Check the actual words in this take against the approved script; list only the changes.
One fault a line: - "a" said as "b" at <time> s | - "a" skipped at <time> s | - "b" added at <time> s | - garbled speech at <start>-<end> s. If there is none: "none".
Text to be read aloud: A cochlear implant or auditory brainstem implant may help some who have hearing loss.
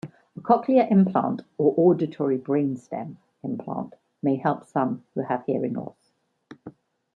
none